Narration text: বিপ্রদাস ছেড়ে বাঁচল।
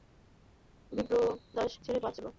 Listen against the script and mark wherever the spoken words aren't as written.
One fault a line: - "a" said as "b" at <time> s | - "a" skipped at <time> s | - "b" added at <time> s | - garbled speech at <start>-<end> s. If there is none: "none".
none